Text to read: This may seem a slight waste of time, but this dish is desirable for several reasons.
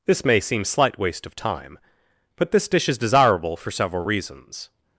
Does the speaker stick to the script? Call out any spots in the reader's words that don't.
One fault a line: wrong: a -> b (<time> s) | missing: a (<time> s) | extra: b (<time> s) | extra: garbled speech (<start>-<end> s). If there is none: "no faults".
missing: a (0.7 s)